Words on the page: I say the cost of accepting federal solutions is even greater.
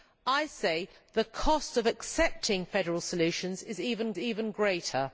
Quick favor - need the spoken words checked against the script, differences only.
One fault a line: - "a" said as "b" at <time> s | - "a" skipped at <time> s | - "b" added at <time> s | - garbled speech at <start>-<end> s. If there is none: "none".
- "even" added at 4.2 s